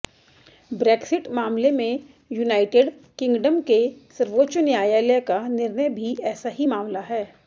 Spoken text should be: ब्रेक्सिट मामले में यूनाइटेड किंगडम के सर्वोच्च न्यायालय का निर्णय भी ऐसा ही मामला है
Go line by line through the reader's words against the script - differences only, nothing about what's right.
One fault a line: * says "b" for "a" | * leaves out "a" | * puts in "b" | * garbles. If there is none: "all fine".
all fine